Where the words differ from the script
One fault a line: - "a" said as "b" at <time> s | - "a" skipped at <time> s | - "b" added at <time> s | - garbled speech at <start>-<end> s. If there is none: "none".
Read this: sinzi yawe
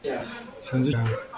none